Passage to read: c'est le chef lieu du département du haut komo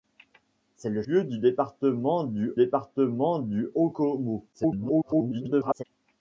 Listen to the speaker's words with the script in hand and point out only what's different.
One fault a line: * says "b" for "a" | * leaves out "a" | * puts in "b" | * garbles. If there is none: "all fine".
* says "lieu du département" for "chef lieu"
* garbles